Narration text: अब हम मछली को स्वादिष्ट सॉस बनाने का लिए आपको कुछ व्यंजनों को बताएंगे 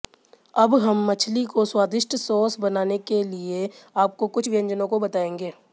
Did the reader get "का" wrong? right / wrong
wrong